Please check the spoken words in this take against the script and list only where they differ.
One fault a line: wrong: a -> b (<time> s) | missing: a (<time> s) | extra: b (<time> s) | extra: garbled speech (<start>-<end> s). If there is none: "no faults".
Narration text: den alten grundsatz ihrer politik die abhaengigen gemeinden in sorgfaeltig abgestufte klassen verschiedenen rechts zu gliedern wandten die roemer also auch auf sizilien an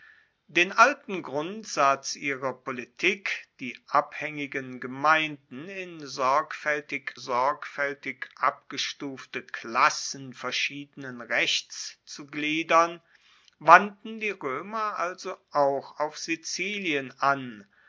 extra: sorgfaeltig (7.1 s)